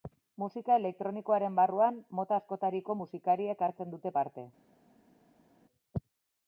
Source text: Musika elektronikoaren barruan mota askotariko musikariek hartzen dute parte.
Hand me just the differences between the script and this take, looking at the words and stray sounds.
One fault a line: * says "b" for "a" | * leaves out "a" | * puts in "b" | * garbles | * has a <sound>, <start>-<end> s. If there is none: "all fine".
all fine